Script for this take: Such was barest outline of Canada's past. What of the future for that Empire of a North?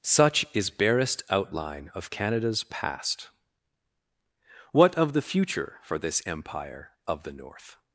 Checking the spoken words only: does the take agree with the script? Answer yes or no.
no